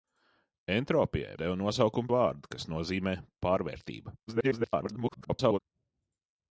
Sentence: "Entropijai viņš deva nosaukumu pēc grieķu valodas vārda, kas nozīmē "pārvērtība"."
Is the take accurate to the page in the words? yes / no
no